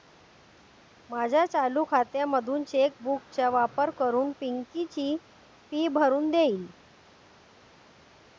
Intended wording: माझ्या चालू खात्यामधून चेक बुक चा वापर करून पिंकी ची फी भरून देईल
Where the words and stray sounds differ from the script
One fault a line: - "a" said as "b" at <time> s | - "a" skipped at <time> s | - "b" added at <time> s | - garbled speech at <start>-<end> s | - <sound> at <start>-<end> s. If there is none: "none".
none